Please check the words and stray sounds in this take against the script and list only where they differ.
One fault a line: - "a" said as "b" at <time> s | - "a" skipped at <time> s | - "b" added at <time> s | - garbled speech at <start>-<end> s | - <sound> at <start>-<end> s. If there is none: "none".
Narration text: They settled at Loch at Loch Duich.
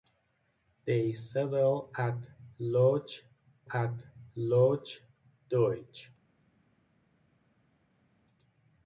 none